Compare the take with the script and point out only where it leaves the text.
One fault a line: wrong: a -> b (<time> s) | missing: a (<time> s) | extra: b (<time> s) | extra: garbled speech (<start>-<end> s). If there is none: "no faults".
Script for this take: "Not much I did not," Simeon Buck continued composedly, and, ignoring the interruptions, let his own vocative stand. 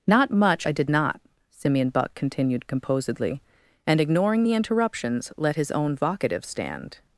no faults